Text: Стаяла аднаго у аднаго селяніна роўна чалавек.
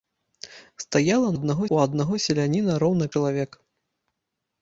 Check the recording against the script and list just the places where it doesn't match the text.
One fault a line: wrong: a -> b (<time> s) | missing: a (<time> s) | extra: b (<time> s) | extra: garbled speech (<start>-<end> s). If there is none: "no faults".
no faults